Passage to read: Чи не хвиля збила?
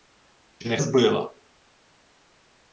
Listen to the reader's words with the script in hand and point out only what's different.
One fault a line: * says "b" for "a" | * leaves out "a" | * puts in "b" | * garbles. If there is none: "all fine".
* leaves out "хвиля"